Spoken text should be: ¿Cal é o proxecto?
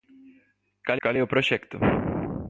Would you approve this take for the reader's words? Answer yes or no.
no